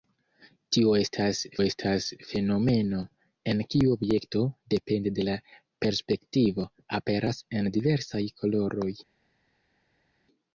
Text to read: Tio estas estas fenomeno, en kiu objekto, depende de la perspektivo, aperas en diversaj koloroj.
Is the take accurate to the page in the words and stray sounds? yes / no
yes